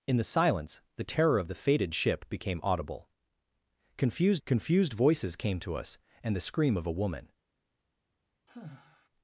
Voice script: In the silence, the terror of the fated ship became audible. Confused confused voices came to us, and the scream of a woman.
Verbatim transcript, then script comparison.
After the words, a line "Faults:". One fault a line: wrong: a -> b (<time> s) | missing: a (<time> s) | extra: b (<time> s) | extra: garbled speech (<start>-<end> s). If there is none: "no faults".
In the silence, the terror of the fated ship became audible. Confused confused voices came to us, and the scream of a woman.
Faults:
no faults